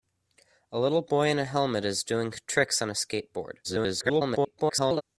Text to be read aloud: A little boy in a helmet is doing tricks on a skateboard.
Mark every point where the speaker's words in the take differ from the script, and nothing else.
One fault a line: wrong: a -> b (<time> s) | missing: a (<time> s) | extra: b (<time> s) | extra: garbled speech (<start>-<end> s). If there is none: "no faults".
extra: garbled speech (3.6-5.0 s)